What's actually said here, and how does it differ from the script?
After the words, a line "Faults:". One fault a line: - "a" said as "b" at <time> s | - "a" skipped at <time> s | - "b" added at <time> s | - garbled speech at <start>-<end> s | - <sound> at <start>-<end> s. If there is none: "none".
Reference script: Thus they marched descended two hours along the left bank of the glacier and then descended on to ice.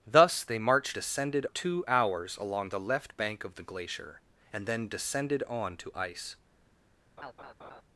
Thus they marched descended two hours along the left bank of the glacier and then descended on to ice.
Faults:
- laugh at 7.2-7.8 s